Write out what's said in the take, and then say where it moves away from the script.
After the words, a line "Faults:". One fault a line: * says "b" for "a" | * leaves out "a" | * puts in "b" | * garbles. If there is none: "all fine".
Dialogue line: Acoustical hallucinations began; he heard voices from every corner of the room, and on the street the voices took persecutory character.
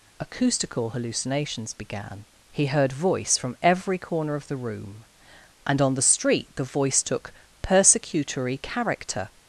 Acoustical hallucinations began; he heard voice from every corner of the room, and on the street the voice took persecutory character.
Faults:
* says "voice" for "voices"
* says "voice" for "voices"